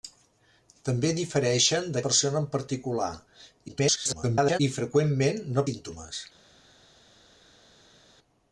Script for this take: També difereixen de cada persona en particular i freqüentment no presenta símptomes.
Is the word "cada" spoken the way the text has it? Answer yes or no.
no